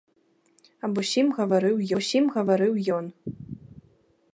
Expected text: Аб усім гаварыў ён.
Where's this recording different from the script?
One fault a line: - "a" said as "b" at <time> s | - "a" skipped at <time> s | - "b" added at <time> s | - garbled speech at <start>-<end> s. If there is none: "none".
- "усім гаварыў" added at 2.0 s